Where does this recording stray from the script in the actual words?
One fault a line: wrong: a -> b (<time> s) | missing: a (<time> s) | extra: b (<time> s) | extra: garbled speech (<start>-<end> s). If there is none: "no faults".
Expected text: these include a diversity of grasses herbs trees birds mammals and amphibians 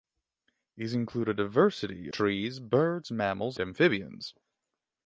missing: of grasses herbs (2.1 s)
missing: and (3.6 s)